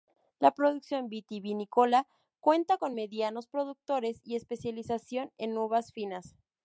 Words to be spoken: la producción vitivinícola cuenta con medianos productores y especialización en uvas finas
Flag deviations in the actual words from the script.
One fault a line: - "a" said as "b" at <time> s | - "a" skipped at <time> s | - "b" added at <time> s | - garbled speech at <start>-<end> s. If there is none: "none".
none